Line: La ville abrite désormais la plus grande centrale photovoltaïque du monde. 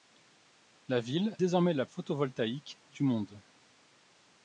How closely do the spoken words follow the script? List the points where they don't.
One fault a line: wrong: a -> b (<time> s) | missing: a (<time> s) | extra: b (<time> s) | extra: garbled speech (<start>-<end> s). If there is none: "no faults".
missing: abrite (1.4 s)
missing: plus grande centrale (1.9 s)